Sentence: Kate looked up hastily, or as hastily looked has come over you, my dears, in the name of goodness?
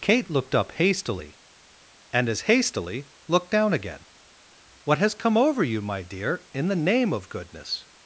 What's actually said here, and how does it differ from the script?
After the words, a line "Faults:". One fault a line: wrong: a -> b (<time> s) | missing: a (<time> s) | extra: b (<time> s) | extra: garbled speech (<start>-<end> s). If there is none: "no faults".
Kate looked up hastily, and as hastily looked down again. 'What has come over you, my dear, in the name of goodness?
Faults:
wrong: or -> and (2.1 s)
extra: down again What (3.5 s)
wrong: dears -> dear (6.0 s)